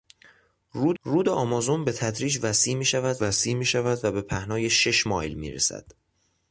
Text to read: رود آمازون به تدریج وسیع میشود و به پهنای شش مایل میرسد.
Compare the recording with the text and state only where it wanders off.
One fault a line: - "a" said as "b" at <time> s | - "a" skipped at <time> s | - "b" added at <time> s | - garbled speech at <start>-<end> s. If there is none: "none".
- "رود" added at 1.0 s
- "وسیع میشود" added at 3.2 s